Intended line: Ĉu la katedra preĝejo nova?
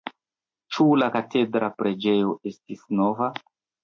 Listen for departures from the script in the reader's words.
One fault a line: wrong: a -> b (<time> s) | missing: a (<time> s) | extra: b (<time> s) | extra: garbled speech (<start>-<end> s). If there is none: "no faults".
extra: estis (2.5 s)